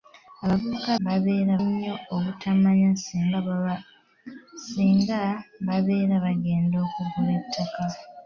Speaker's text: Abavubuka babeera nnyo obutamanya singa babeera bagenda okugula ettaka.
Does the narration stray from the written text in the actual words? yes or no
no